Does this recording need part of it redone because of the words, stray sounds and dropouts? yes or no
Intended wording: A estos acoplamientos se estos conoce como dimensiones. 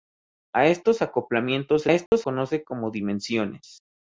yes